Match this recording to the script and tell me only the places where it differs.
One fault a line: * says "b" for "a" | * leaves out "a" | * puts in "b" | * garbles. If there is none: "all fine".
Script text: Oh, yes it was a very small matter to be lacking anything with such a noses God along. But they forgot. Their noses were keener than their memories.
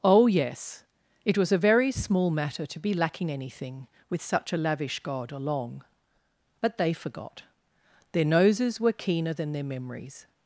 * says "lavish" for "noses"